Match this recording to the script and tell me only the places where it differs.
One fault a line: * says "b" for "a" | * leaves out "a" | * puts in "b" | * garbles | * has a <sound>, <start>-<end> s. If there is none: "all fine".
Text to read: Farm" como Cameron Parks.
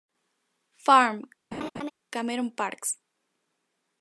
* leaves out "como"
* has a laugh, 1.5-1.9 s